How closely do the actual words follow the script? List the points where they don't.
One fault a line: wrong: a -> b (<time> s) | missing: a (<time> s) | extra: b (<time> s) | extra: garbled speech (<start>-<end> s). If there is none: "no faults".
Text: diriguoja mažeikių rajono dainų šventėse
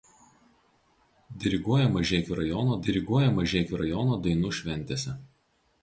extra: diriguoja mažeikių rajono (2.9 s)